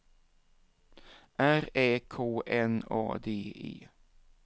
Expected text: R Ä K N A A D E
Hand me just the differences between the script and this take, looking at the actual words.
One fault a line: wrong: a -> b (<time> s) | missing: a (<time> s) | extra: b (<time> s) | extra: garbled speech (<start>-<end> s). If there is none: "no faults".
missing: A (3.2 s)